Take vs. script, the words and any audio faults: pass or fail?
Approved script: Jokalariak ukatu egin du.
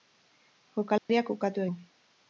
fail